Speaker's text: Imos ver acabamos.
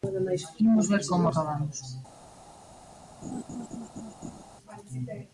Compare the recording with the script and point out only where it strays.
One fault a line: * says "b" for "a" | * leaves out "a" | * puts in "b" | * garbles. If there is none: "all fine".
* puts in "como"